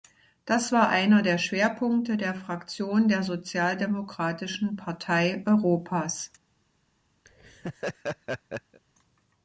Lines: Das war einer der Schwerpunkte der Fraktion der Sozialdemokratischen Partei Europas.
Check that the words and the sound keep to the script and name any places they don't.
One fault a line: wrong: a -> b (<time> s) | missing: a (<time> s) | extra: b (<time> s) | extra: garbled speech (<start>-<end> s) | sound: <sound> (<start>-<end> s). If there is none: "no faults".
sound: laugh (7.2-8.8 s)